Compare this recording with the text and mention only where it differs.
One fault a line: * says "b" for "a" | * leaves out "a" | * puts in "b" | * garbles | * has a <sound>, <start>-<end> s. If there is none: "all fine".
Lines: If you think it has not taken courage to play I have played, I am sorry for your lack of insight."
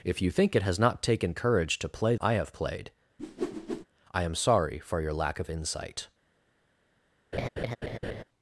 * has a whoosh, 3.2-3.9 s
* has a laugh, 7.3-8.2 s